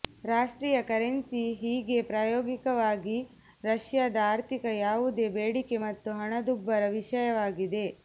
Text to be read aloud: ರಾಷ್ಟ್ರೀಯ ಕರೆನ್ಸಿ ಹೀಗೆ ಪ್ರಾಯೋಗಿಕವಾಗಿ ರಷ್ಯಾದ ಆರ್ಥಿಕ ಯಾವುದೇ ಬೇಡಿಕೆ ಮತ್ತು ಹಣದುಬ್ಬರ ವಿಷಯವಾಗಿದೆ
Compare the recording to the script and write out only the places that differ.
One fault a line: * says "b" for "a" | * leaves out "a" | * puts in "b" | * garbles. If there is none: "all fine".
all fine